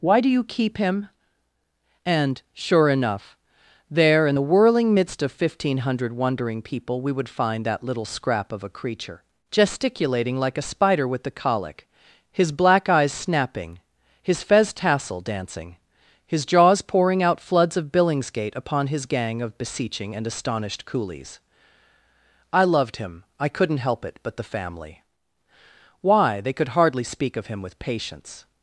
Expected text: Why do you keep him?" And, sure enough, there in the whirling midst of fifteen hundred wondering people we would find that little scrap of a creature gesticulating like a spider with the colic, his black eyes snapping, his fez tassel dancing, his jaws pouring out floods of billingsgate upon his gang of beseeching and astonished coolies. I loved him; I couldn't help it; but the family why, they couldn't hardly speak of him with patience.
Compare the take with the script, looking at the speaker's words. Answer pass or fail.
fail